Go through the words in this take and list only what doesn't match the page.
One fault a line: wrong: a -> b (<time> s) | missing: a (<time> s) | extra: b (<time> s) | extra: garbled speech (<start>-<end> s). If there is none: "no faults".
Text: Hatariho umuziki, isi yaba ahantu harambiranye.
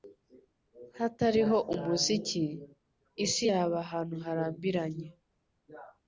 no faults